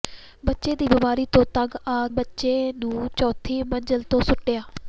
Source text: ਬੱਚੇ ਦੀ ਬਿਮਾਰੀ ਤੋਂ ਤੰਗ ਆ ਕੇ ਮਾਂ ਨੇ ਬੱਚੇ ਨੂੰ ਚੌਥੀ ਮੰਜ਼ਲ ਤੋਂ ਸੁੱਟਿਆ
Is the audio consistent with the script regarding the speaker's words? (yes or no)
no